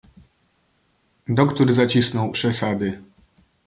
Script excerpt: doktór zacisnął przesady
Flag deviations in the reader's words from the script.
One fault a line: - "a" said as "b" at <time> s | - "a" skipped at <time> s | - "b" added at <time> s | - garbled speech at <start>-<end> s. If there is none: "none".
none